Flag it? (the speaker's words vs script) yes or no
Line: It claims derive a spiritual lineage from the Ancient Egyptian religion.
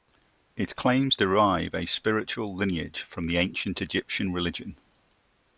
no